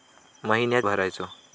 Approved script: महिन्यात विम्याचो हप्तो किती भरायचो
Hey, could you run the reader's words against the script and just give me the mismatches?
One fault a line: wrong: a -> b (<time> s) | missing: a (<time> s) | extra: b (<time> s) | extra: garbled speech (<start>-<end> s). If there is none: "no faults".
missing: विम्याचो हप्तो किती (0.9 s)